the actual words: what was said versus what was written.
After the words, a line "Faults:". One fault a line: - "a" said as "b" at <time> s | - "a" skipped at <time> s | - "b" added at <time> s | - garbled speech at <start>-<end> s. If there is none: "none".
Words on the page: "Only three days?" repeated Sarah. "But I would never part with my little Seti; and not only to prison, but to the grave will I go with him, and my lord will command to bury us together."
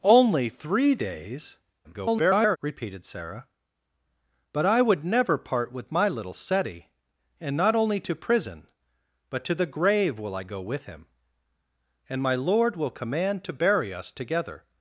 "Only three days?" [garbled] repeated Sarah. "But I would never part with my little Seti; and not only to prison, but to the grave will I go with him, and my lord will command to bury us together."
Faults:
- garbled speech at 1.8-2.6 s